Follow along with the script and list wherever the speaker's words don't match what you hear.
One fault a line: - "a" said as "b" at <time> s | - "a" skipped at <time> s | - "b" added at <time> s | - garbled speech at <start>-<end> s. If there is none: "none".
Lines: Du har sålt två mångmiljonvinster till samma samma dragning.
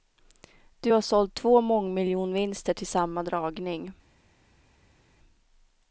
- "samma" skipped at 3.2 s